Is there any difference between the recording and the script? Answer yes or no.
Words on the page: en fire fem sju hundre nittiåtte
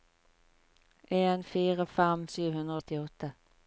no